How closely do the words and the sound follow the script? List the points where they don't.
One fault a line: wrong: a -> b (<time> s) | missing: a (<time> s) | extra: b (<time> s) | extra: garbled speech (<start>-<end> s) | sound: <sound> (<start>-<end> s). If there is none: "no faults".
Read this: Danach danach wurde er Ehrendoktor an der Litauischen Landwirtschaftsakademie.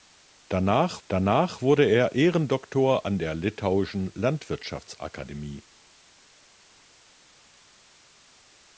no faults